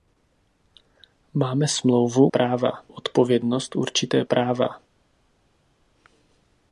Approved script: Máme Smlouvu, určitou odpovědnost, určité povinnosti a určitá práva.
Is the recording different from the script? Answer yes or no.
yes